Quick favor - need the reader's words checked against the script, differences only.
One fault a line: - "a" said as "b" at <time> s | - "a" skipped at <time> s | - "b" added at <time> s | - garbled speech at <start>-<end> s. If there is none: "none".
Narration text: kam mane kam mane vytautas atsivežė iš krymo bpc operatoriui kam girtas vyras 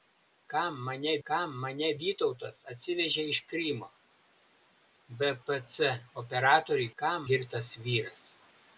none